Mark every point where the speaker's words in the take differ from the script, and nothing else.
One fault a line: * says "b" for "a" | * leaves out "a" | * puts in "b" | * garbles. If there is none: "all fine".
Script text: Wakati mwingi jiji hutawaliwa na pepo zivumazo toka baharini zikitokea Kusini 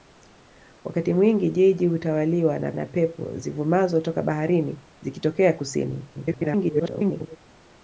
* puts in "na"
* garbles